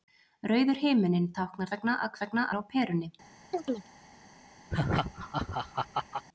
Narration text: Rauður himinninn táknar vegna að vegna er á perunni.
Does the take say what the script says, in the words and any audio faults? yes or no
no